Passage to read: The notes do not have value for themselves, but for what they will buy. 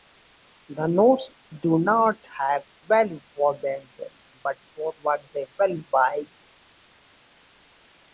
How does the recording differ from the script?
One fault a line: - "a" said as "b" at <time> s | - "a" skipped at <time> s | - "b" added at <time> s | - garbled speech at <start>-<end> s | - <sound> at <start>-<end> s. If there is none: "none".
none